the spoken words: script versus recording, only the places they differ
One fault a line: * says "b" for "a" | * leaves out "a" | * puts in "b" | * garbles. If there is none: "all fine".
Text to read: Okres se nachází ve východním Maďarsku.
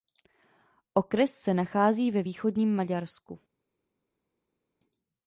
all fine